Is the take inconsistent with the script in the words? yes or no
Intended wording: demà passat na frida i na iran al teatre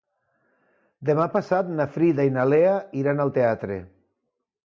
yes